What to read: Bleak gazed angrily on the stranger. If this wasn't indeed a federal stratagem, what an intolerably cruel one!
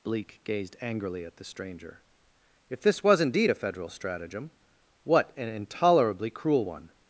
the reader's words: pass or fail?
fail